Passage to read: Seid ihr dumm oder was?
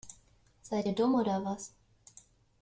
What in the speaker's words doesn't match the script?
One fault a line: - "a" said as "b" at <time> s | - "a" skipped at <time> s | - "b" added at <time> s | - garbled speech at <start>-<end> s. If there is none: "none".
none